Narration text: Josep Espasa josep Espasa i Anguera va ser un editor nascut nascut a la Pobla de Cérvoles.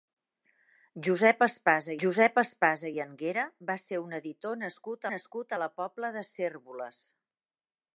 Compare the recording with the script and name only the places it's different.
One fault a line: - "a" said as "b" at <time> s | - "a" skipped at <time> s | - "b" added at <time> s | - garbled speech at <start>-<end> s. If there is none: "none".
none